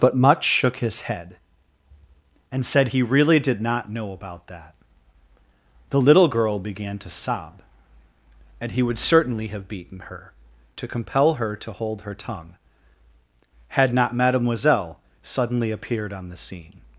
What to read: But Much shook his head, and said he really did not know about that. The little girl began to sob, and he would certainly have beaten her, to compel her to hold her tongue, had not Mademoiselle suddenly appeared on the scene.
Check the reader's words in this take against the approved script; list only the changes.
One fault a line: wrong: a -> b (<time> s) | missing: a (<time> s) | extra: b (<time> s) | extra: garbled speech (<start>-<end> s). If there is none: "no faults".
no faults